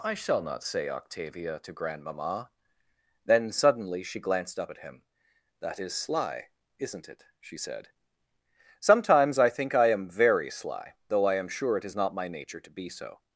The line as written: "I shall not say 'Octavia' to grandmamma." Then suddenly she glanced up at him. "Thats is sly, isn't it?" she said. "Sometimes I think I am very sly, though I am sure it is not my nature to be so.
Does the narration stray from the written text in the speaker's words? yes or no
yes